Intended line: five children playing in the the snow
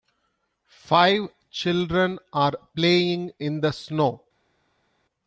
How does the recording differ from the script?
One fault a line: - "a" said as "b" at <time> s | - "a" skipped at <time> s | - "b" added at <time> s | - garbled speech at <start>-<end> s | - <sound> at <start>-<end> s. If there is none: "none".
- "are" added at 2.3 s
- "the" skipped at 3.7 s